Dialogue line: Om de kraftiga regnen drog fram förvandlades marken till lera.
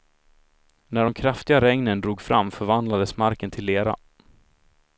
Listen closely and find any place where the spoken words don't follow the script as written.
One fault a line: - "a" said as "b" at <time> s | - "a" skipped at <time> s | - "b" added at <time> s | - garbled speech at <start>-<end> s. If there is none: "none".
- "Om" said as "När" at 0.9 s